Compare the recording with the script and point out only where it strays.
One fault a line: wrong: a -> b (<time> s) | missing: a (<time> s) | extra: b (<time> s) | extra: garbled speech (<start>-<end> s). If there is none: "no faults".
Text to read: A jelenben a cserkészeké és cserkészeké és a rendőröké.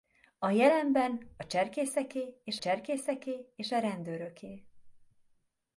no faults